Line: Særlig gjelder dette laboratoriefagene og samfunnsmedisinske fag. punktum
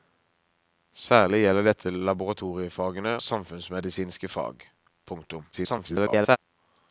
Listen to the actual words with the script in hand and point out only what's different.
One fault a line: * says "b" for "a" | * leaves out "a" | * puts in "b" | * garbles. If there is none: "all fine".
* leaves out "og"
* garbles